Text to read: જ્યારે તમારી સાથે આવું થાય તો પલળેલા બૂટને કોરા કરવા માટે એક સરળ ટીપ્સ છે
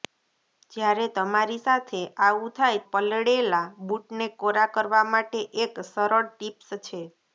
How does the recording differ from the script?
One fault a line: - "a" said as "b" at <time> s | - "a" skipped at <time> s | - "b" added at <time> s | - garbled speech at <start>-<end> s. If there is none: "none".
- "તો" skipped at 2.8 s